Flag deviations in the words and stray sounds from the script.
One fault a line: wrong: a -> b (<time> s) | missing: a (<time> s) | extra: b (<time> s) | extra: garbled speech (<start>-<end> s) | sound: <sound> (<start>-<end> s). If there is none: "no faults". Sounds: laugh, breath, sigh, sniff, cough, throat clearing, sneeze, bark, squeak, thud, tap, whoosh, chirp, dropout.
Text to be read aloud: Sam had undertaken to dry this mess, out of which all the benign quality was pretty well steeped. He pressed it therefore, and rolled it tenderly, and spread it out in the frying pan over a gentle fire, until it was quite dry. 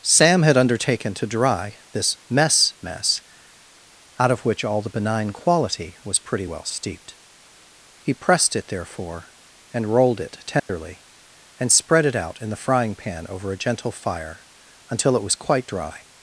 extra: mess (2.8 s)
sound: dropout (10.6-10.7 s)